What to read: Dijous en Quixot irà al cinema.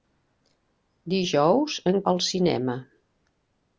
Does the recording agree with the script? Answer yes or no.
no